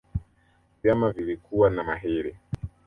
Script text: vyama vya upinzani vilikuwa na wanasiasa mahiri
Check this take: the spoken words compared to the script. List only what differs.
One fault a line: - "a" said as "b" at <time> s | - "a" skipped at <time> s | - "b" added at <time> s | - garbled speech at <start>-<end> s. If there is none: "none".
- "vya upinzani" skipped at 1.1 s
- "wanasiasa" skipped at 1.8 s